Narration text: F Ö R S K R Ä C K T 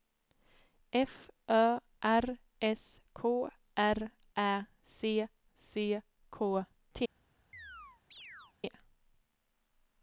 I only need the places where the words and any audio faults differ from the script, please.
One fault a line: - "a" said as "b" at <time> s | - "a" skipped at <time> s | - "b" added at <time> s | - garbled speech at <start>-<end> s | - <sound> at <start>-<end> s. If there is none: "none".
- "C" added at 5.6 s
- chirp at 7.5-8.5 s